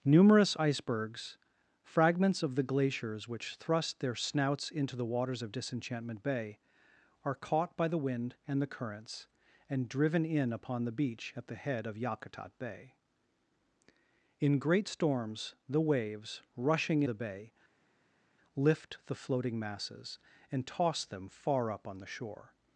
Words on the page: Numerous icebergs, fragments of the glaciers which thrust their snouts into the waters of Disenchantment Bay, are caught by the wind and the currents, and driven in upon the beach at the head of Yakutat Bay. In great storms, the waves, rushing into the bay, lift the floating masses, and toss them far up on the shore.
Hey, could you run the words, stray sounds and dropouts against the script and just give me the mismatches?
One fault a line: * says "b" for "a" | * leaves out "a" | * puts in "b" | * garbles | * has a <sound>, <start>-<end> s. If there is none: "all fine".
* leaves out "into"